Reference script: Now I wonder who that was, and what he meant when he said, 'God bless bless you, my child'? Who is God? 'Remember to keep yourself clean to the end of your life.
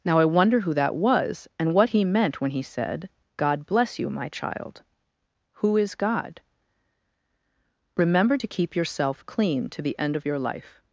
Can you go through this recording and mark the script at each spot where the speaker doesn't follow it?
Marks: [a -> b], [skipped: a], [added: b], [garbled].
Now I wonder who that was, and what he meant when he said, 'God bless [skipped: bless] you, my child'? Who is God? 'Remember to keep yourself clean to the end of your life.